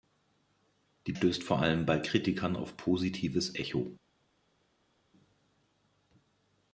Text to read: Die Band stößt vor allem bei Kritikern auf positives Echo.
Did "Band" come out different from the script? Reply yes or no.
yes